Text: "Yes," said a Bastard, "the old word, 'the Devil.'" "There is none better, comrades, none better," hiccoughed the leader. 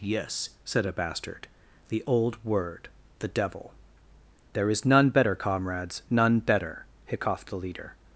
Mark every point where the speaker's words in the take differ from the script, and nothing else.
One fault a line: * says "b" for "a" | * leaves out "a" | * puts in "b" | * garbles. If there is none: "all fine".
all fine